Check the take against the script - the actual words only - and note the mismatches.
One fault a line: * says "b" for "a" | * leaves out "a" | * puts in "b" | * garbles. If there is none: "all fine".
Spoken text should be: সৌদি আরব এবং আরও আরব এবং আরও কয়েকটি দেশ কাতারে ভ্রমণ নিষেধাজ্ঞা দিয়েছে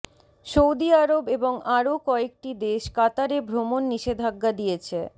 * leaves out "আরব এবং আরও"